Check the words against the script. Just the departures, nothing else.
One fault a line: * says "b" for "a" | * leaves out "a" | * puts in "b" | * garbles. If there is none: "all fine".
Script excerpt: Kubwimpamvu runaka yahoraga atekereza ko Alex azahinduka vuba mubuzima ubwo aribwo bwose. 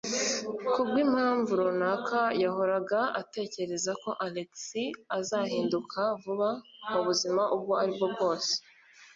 all fine